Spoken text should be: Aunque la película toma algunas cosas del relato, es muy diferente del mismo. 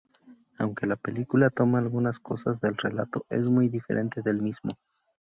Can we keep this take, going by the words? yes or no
yes